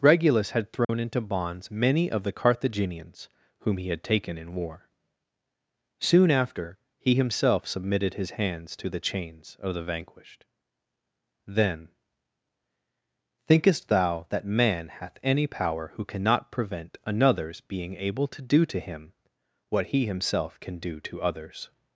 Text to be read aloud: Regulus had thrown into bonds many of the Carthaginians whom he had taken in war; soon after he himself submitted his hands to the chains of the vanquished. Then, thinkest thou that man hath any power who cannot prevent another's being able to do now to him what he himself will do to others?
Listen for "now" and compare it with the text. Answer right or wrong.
wrong